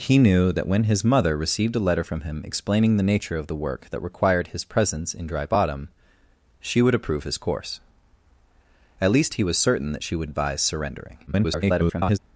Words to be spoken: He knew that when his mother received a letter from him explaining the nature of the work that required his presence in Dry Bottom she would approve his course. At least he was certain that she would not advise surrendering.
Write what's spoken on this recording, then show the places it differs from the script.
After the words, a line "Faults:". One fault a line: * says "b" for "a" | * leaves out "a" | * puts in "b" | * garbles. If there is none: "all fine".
He knew that when his mother received a letter from him explaining the nature of the work that required his presence in Dry Bottom she would approve his course. At least he was certain that she would advise surrendering. [garbled]
Faults:
* leaves out "not"
* garbles